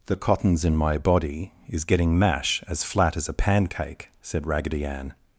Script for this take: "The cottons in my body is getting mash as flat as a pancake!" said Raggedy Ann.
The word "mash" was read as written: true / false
true